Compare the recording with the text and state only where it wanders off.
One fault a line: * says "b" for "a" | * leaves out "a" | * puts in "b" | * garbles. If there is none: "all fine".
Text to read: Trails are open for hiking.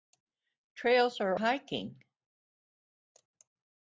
* leaves out "open for"